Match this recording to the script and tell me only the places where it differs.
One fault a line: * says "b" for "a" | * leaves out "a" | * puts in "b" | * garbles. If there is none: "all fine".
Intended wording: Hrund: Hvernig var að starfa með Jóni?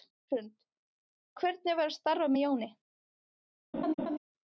all fine